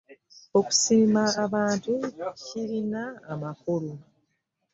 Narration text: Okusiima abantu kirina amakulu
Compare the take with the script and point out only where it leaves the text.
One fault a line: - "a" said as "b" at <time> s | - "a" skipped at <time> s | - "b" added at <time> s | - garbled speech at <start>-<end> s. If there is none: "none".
none